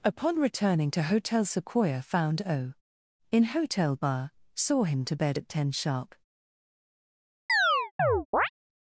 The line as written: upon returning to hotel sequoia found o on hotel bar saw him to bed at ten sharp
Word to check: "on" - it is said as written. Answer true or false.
false